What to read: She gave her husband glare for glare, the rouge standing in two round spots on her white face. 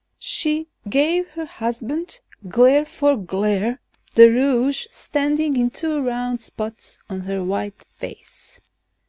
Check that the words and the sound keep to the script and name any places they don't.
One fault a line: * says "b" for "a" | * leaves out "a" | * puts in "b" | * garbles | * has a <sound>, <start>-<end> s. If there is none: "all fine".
all fine